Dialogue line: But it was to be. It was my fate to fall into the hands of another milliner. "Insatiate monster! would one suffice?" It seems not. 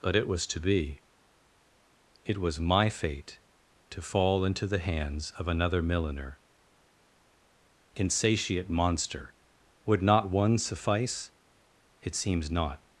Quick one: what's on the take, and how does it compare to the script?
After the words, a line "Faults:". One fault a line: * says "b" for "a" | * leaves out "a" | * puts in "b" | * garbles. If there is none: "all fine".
But it was to be. It was my fate to fall into the hands of another milliner. "Insatiate monster! would not one suffice?" It seems not.
Faults:
* puts in "not"